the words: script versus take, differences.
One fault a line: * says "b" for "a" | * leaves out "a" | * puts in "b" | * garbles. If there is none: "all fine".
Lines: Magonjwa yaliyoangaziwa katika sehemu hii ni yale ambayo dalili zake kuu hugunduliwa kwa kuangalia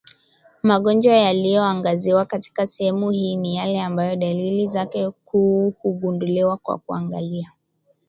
all fine